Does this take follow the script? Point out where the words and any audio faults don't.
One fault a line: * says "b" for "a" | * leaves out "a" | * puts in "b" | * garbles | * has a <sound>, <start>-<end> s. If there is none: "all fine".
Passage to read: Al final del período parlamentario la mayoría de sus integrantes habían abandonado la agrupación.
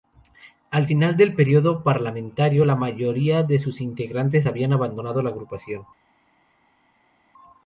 all fine